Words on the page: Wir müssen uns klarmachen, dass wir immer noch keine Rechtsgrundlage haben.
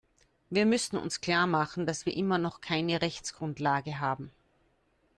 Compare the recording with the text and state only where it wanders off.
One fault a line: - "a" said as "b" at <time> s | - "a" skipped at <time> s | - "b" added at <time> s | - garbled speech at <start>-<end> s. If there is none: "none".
none